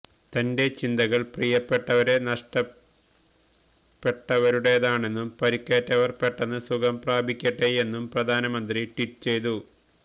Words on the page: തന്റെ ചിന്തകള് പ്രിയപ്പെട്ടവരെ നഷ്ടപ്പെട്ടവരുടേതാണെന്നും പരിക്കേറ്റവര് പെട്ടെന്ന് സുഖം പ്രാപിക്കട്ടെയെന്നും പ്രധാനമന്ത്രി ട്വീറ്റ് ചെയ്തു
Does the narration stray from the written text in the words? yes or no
no